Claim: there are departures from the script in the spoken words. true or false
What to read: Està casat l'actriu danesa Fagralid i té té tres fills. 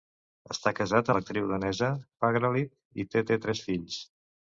false